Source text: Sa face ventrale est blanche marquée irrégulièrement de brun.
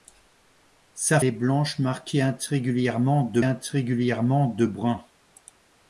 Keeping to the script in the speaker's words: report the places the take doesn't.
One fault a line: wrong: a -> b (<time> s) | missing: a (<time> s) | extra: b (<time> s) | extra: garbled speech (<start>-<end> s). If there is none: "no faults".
missing: face ventrale (1.2 s)
extra: irrégulièrement de (3.4 s)